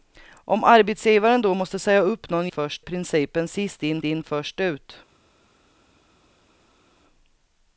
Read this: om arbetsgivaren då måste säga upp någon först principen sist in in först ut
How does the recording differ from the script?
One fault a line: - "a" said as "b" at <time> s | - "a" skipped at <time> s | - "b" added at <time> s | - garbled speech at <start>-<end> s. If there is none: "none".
none